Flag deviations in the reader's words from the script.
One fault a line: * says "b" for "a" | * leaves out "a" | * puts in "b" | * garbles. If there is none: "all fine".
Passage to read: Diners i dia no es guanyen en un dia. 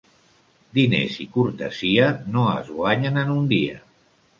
* says "cortesia" for "dia"